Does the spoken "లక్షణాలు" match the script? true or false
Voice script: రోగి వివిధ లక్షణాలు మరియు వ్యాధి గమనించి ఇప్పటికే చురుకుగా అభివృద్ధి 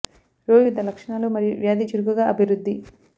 true